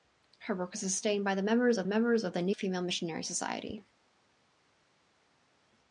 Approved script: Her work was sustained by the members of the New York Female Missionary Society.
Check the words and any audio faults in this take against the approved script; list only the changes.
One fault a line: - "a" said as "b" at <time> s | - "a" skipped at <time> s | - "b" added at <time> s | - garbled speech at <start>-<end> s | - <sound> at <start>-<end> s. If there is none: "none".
- "members of" added at 1.9 s
- "York" skipped at 2.6 s